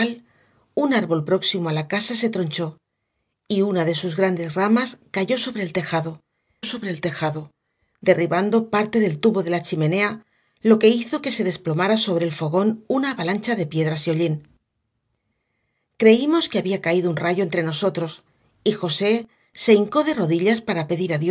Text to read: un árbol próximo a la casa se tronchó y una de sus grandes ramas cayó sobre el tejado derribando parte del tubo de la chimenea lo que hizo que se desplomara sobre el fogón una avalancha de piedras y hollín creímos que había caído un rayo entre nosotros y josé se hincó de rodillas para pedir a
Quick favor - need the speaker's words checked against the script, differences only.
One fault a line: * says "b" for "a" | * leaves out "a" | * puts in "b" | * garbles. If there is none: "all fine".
* puts in "sobre el tejado"